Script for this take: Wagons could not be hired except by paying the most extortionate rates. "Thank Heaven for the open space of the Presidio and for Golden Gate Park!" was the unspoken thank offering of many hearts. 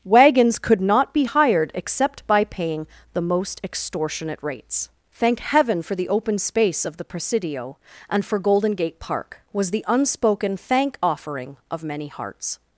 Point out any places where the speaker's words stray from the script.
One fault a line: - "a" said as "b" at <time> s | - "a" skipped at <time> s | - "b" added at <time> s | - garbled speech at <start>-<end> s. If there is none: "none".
none